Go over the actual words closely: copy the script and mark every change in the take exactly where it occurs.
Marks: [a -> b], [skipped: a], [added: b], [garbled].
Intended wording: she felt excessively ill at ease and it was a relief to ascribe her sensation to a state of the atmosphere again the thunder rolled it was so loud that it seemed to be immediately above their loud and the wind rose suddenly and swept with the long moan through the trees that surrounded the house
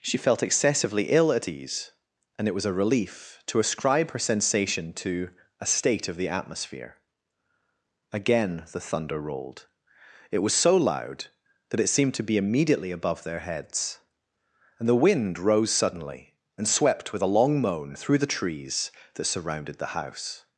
she felt excessively ill at ease and it was a relief to ascribe her sensation to a state of the atmosphere again the thunder rolled it was so loud that it seemed to be immediately above their [loud -> heads] and the wind rose suddenly and swept with [the -> a] long moan through the trees that surrounded the house